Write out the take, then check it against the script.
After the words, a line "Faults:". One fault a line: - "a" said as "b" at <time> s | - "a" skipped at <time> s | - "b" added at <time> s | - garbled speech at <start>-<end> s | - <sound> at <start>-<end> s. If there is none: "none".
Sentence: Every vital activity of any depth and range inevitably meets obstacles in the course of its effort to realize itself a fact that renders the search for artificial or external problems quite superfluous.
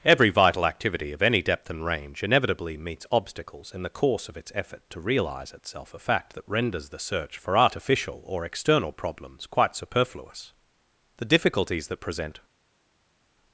Every vital activity of any depth and range inevitably meets obstacles in the course of its effort to realize itself a fact that renders the search for artificial or external problems quite superfluous. The difficulties that present
Faults:
- "The difficulties that present" added at 11.2 s